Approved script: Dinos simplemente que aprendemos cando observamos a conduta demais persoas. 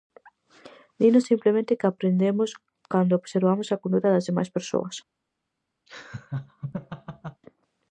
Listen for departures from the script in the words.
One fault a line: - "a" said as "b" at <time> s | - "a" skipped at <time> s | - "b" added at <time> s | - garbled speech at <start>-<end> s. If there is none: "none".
- "das" added at 4.1 s